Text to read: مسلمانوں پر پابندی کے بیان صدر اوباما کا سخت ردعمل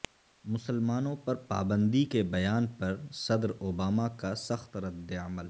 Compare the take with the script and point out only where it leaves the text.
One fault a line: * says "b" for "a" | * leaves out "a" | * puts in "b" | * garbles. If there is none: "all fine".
* puts in "پر"